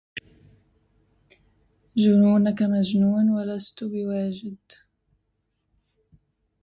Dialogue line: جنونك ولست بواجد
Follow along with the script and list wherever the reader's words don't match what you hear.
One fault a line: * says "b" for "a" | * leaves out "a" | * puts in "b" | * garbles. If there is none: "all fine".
* puts in "مجنون"